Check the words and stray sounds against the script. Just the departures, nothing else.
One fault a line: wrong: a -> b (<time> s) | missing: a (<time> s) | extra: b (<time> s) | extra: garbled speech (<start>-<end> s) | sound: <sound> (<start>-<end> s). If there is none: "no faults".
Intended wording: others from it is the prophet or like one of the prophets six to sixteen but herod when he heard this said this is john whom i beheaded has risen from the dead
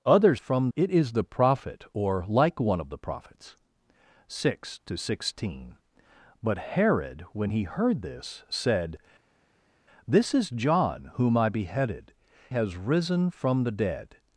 no faults